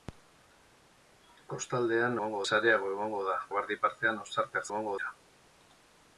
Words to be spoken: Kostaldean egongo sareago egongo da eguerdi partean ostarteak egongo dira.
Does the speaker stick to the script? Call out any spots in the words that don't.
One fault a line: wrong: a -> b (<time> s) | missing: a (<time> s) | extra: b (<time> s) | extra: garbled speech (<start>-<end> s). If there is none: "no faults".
no faults